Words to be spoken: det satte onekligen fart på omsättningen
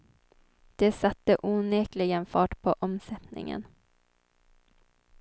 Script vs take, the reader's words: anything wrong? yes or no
no